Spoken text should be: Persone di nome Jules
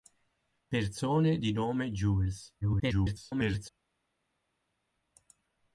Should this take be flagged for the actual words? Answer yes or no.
yes